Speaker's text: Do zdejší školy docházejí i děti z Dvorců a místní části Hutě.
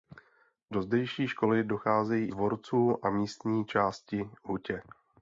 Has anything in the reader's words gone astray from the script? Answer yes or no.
yes